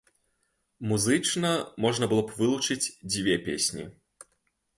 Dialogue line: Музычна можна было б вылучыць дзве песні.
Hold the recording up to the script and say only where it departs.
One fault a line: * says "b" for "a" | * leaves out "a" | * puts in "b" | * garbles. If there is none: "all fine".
all fine